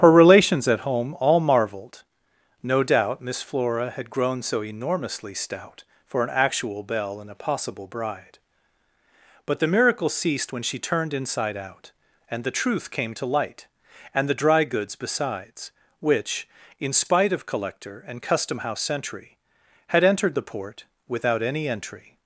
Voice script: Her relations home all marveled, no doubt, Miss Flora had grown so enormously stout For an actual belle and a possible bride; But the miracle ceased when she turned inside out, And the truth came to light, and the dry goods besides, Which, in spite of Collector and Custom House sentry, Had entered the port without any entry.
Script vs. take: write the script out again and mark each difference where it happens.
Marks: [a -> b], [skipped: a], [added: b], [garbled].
Her relations [added: at] home all marveled, no doubt, Miss Flora had grown so enormously stout For an actual belle and a possible bride; But the miracle ceased when she turned inside out, And the truth came to light, and the dry goods besides, Which, in spite of Collector and Custom House sentry, Had entered the port without any entry.